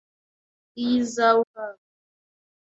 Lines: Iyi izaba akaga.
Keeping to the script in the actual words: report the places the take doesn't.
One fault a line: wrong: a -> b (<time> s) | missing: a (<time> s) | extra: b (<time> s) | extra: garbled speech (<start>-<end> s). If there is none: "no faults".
no faults